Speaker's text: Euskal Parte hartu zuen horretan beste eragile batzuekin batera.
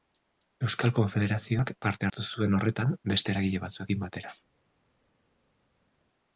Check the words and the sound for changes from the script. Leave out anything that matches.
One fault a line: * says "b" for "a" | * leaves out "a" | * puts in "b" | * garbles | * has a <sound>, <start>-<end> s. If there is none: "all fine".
* puts in "Konfederazioak"